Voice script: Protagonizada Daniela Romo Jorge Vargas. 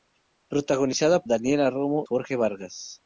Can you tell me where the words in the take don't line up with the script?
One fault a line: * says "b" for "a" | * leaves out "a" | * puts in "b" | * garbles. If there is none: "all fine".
all fine